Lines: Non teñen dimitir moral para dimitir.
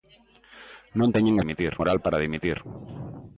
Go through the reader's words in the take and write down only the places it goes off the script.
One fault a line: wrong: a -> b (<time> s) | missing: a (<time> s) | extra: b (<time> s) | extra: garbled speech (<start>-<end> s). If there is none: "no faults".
no faults